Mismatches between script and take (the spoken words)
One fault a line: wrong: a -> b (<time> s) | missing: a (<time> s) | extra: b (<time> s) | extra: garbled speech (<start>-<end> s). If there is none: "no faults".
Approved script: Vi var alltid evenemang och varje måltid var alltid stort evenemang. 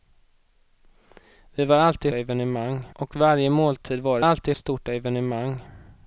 no faults